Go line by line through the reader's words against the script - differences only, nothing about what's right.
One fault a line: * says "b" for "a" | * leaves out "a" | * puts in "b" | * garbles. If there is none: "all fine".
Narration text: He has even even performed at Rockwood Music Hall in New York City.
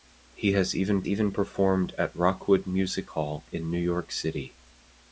all fine